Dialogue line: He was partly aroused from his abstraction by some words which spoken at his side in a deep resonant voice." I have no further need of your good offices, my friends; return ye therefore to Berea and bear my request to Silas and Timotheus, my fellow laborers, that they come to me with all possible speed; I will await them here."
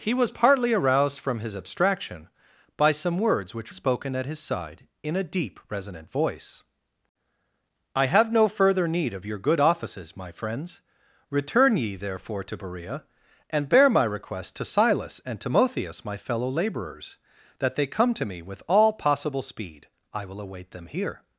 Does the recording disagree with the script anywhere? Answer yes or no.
no